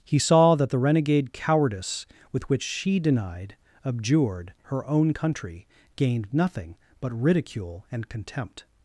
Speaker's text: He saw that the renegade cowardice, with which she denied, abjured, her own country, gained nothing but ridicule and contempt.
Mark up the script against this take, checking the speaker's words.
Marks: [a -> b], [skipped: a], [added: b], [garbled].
He saw that the renegade cowardice, with which she denied, abjured, her own country, gained nothing but ridicule and contempt.